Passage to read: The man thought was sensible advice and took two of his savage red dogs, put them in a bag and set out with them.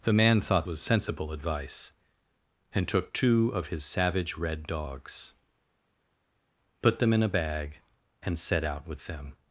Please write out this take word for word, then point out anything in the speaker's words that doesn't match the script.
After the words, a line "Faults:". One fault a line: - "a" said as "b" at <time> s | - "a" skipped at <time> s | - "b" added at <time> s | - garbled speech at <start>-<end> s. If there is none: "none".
The man thought was sensible advice and took two of his savage red dogs, put them in a bag and set out with them.
Faults:
none